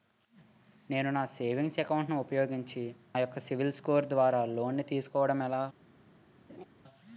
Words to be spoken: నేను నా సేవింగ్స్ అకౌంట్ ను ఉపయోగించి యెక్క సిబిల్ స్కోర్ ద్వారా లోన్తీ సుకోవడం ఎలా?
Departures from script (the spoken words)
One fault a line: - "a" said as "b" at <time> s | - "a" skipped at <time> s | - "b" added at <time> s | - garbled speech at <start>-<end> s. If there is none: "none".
none